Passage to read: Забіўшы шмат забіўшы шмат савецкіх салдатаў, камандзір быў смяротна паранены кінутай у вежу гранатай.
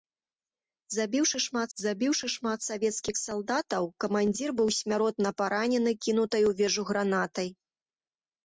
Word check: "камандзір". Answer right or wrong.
right